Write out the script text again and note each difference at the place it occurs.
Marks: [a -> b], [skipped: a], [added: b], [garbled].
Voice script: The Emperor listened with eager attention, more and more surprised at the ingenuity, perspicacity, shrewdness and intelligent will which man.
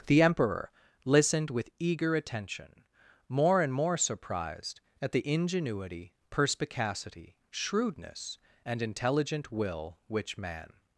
The Emperor listened with eager attention, more and more surprised at the ingenuity, perspicacity, shrewdness and intelligent will which man.